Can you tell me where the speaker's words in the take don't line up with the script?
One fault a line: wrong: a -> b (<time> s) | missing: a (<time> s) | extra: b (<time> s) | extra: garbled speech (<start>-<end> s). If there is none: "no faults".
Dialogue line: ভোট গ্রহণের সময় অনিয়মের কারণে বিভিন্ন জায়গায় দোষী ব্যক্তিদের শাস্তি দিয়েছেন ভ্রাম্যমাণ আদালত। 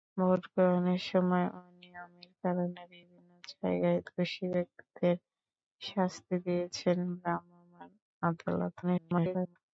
extra: garbled speech (8.8-9.6 s)